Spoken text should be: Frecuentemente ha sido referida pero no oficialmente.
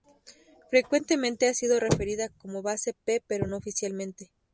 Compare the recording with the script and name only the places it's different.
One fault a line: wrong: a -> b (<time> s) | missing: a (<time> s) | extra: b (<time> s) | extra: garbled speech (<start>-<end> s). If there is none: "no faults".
extra: como Base P (2.3 s)